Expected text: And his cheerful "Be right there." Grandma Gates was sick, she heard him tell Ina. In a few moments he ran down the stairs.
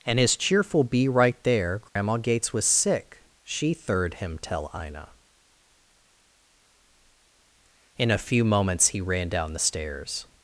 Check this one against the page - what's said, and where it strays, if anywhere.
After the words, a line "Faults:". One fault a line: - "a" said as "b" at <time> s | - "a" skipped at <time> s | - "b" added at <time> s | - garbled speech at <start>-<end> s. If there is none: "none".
And his cheerful "Be right there." Grandma Gates was sick, she third him tell Ina. In a few moments he ran down the stairs.
Faults:
- "heard" said as "third" at 3.7 s